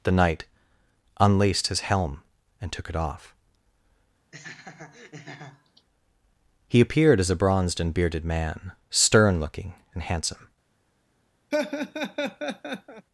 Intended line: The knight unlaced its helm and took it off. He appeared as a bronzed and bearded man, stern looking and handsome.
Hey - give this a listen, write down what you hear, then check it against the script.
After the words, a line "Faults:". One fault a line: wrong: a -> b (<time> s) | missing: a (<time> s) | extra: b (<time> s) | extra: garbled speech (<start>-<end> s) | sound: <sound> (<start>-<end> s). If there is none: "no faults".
The knight unlaced his helm and took it off. He appeared as a bronzed and bearded man, stern looking and handsome.
Faults:
wrong: its -> his (1.7 s)
sound: laugh (4.3-5.9 s)
sound: laugh (11.5-13.1 s)